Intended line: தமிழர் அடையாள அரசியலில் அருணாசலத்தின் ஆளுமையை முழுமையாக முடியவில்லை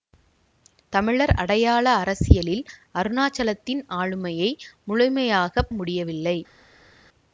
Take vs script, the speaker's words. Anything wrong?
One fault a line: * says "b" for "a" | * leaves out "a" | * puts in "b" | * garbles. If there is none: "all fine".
all fine